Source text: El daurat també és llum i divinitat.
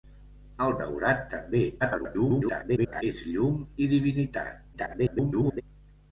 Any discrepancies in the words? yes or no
yes